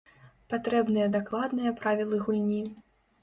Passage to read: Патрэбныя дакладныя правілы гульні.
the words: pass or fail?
pass